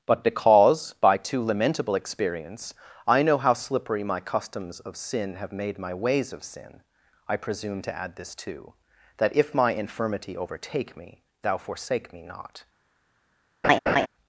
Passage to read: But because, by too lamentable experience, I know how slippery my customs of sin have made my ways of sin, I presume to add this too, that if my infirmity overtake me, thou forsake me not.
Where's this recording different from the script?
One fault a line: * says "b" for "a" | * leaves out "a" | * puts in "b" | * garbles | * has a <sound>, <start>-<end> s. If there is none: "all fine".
* has a laugh, 13.6-14.1 s